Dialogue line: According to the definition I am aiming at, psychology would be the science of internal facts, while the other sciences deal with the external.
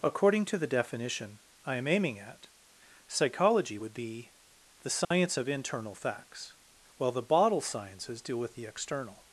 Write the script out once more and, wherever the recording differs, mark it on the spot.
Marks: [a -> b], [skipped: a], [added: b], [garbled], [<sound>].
According to the definition I am aiming at, psychology would be the science [dropout] of internal facts, while the [other -> bottle] sciences deal with the external.